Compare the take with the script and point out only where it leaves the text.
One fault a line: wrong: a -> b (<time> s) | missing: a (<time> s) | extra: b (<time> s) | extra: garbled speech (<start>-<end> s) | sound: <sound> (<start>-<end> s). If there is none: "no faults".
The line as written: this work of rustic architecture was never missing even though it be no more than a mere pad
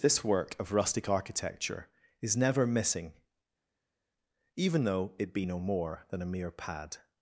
wrong: was -> is (2.2 s)